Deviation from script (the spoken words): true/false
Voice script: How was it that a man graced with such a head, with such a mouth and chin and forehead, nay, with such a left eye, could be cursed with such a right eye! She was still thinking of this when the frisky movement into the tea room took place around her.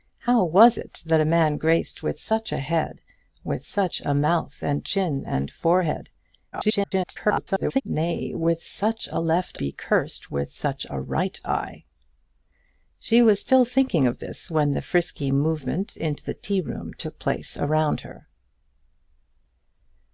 true